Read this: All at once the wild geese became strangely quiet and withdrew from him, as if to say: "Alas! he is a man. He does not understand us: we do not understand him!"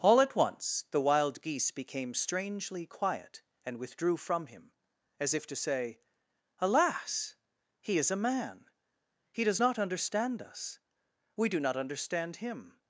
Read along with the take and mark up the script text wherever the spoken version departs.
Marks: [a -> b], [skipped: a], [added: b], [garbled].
All at once the wild geese became strangely quiet and withdrew from him, as if to say: "Alas! he is a man. He does not understand us: we do not understand him!"